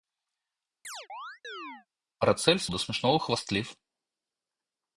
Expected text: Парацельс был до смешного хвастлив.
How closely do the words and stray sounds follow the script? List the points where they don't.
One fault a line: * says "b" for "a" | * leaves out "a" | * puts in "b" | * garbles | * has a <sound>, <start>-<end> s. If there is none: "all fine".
* has a chirp, 0.8-1.9 s
* leaves out "был"